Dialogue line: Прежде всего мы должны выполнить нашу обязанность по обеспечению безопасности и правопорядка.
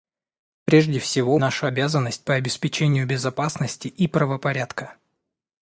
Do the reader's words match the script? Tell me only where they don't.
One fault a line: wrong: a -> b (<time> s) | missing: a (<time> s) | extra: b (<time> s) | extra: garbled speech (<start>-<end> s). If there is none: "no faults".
missing: мы должны выполнить (1.4 s)